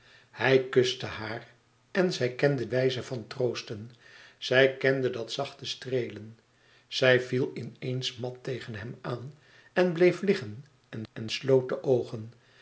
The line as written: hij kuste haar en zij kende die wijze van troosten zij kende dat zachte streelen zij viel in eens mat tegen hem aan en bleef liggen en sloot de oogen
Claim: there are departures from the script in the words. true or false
true